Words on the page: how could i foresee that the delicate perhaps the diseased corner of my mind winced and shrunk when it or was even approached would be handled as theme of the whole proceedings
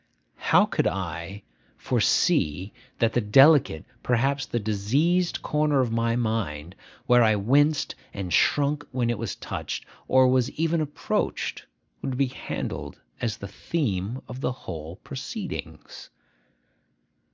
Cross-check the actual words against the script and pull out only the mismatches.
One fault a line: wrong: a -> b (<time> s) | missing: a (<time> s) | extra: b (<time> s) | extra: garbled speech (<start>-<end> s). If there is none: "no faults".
extra: where i (7.1 s)
extra: was touched (9.2 s)
extra: the (13.4 s)